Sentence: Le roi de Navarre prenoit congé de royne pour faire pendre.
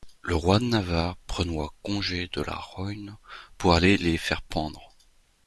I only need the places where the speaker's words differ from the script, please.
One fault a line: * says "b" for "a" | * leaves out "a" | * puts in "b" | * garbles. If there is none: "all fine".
* puts in "la"
* puts in "aller les"